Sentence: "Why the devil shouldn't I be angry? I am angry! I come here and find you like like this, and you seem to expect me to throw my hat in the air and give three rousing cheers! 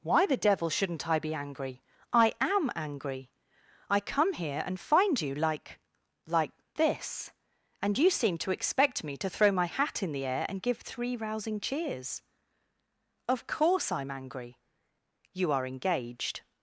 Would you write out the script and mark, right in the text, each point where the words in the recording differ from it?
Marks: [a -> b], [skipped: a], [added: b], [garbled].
"Why the devil shouldn't I be angry? I am angry! I come here and find you like like this, and you seem to expect me to throw my hat in the air and give three rousing cheers! [added: Of course I'm angry You are engaged]